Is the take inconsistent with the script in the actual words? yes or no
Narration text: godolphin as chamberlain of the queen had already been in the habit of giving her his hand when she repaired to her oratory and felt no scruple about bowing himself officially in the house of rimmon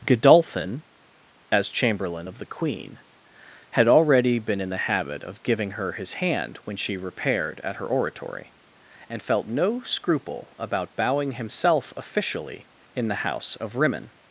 yes